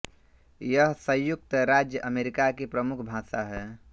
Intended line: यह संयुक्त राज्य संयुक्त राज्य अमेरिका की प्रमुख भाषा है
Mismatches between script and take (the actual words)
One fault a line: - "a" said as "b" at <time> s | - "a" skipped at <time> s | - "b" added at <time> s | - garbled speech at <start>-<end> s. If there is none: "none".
- "संयुक्त राज्य" skipped at 2.0 s